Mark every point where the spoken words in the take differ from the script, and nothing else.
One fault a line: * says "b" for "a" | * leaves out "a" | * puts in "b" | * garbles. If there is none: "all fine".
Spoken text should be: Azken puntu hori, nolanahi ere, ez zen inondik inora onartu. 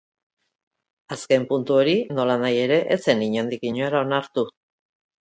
all fine